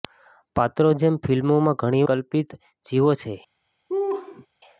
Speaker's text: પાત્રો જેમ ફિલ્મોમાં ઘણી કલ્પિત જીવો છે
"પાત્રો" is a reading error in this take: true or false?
false